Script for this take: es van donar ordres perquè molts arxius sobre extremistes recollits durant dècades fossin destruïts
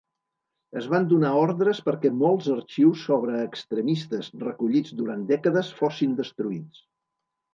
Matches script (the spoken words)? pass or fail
pass